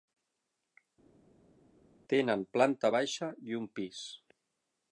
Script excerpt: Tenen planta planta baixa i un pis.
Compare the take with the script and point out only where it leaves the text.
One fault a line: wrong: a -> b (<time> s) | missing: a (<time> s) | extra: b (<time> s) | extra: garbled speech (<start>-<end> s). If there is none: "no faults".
missing: planta (2.9 s)